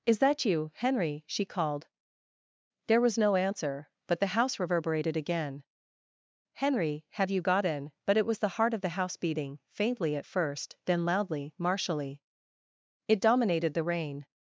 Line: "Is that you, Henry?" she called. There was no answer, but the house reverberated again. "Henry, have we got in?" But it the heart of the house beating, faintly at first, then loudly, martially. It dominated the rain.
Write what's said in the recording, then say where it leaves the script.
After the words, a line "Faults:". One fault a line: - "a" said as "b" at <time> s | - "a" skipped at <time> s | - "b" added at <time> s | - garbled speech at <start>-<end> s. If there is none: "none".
"Is that you, Henry?" she called. There was no answer, but the house reverberated again. "Henry, have you got in?" But it was the heart of the house beating, faintly at first, then loudly, martially. It dominated the rain.
Faults:
- "we" said as "you" at 7.3 s
- "was" added at 8.2 s